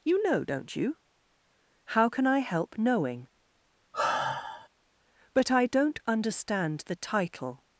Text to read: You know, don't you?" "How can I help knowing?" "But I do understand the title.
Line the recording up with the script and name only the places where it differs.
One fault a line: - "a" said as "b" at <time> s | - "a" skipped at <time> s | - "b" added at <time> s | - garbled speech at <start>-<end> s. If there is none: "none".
- "do" said as "don't" at 5.7 s